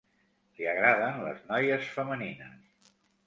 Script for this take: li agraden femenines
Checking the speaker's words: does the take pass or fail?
fail